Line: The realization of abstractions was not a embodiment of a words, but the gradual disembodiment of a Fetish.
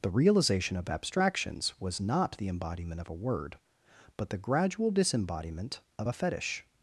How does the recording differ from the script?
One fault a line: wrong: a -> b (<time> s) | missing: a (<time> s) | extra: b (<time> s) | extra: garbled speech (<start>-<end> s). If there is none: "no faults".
wrong: a -> the (2.4 s)
wrong: words -> word (3.1 s)